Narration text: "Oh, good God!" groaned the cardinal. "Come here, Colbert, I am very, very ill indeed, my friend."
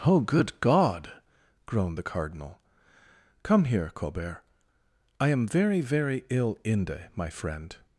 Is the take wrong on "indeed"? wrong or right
wrong